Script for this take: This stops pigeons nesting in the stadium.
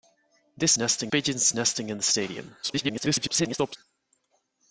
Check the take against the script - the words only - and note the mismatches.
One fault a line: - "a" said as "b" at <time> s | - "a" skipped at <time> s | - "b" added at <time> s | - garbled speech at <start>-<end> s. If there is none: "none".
- "stops" said as "nesting" at 0.7 s
- garbled speech at 2.6-3.8 s